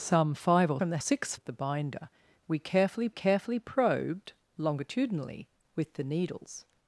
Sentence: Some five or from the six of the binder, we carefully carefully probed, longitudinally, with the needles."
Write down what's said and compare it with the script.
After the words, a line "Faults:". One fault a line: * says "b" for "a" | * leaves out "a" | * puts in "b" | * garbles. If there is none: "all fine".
Some five or from the six of the binder, we carefully carefully probed, longitudinally, with the needles."
Faults:
all fine